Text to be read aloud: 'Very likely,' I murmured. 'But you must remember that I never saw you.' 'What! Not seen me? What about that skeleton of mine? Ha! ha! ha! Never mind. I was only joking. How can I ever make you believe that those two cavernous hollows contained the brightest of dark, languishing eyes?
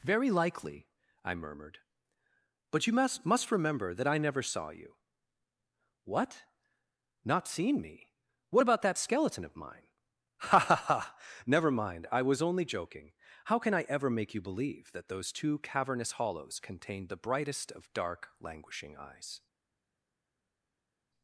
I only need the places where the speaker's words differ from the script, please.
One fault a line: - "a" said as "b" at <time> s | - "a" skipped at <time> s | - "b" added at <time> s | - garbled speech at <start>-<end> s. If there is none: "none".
- "must" added at 3.3 s